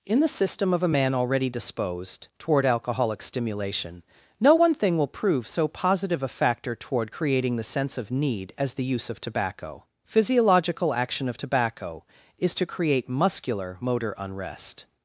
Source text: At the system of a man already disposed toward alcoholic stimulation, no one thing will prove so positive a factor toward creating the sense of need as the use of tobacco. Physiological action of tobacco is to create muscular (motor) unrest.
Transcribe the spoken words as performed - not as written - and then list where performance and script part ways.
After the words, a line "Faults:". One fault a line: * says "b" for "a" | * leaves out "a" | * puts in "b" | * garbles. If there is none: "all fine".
In the system of a man already disposed toward alcoholic stimulation, no one thing will prove so positive a factor toward creating the sense of need as the use of tobacco. Physiological action of tobacco is to create muscular (motor) unrest.
Faults:
* says "In" for "At"